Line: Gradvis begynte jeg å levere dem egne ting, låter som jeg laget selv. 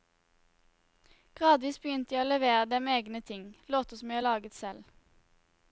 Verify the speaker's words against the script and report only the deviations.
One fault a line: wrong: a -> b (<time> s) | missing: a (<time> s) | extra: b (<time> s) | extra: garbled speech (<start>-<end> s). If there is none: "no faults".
no faults